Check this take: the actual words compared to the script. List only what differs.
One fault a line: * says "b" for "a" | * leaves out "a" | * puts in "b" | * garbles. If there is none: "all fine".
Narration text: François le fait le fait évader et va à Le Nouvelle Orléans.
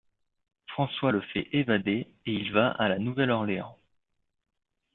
* leaves out "le fait"
* puts in "il"
* says "La" for "Le"